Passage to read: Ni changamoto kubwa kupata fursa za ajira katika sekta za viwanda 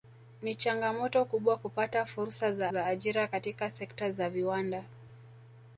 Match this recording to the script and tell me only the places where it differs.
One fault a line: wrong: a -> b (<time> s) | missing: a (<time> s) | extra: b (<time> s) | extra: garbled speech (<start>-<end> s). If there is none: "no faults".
extra: za (2.7 s)